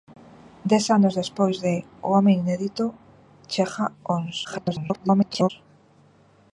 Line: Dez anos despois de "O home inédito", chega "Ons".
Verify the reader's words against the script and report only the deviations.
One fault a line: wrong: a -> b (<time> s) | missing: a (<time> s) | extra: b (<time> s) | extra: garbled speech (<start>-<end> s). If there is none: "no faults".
extra: garbled speech (4.4-5.5 s)